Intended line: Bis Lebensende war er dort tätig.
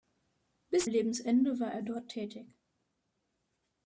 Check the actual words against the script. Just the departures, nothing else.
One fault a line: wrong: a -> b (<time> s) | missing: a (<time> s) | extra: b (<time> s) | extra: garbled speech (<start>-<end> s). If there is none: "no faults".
no faults